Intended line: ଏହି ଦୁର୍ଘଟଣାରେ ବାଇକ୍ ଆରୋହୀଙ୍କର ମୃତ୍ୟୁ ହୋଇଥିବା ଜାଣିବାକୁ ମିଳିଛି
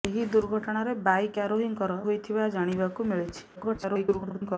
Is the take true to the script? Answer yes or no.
no